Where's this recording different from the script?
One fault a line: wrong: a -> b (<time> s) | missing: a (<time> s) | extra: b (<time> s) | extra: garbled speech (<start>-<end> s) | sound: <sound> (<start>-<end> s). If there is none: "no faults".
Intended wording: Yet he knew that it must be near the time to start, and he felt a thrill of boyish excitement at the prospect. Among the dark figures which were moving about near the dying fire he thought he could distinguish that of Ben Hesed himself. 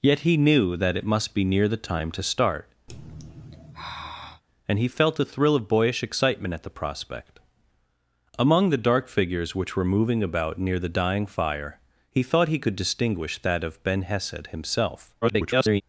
sound: sigh (2.9-4.4 s)
extra: garbled speech (15.2-15.8 s)